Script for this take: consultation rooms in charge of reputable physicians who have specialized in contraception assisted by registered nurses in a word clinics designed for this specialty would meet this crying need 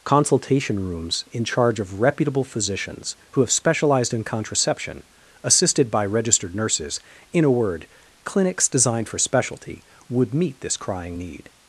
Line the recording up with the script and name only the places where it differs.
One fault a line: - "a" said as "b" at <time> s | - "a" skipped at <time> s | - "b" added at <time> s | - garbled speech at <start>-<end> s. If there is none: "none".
- "this" skipped at 9.2 s